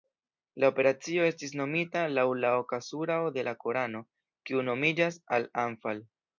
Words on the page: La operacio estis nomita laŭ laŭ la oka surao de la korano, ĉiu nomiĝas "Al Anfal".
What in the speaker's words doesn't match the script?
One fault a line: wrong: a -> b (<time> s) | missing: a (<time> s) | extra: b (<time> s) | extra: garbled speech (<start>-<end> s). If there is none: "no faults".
missing: laŭ (2.2 s)
wrong: ĉiu -> kiu (4.5 s)